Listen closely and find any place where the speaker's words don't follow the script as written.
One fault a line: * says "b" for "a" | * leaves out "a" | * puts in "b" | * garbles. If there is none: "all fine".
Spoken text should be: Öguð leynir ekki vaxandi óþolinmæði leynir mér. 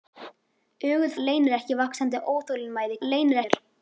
all fine